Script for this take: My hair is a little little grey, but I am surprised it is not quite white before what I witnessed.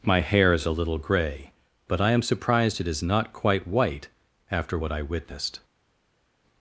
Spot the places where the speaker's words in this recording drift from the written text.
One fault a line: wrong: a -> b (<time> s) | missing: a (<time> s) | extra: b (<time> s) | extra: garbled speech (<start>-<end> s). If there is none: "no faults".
missing: little (1.0 s)
wrong: before -> after (4.5 s)